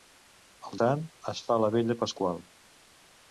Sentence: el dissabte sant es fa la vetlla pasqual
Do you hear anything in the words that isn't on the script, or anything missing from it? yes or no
yes